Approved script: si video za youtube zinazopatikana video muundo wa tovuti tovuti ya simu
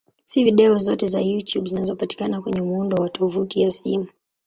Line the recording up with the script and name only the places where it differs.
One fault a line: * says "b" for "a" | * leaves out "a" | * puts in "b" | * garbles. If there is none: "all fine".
* puts in "zote"
* says "kwenye" for "video"
* leaves out "tovuti"